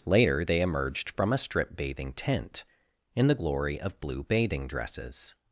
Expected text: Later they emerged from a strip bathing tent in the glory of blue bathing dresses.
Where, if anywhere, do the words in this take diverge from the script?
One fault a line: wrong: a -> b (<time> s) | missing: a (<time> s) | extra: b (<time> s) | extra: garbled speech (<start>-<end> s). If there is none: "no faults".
no faults